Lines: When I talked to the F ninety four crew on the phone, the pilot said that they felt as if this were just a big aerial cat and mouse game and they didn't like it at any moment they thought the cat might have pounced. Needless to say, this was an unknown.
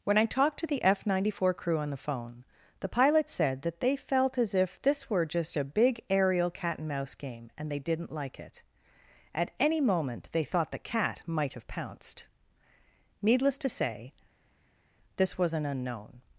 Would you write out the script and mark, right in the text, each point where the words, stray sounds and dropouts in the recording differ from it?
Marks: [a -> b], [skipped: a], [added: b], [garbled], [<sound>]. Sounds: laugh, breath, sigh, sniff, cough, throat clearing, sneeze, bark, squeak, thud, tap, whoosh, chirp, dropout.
When I talked to the F ninety four crew on the phone, the pilot said that they felt as if this were just a big aerial cat and mouse game and they didn't like it at any moment they thought the cat might have pounced. Needless to say, this was an unknown.